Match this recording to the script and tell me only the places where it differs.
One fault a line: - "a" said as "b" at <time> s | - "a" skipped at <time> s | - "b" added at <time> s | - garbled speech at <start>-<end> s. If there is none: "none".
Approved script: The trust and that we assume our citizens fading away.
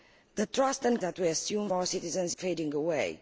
none